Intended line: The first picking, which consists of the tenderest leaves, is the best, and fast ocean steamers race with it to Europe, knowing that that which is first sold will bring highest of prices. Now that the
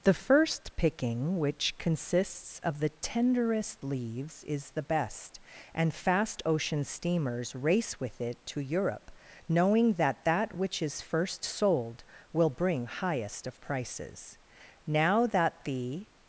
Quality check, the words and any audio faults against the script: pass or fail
pass